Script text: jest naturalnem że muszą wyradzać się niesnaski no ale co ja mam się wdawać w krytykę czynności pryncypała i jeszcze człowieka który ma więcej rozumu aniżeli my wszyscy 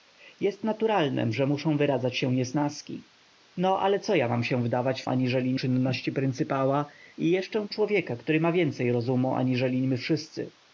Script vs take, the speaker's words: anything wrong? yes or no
yes